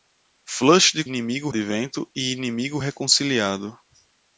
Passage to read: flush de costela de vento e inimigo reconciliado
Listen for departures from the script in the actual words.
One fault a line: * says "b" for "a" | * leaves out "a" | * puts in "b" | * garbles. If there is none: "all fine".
* says "inimigo" for "costela"